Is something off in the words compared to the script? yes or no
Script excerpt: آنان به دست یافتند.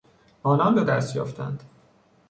no